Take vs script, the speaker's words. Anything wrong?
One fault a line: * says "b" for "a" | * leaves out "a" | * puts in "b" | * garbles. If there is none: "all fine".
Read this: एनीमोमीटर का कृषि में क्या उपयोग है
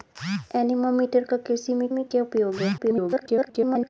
* puts in "में"
* garbles